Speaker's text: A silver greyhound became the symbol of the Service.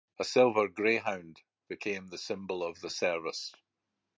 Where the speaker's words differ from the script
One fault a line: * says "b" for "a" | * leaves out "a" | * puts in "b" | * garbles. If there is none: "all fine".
all fine